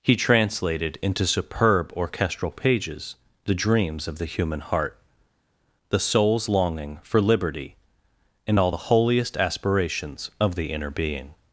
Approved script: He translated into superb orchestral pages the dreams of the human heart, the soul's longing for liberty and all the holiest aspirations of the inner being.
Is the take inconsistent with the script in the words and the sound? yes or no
no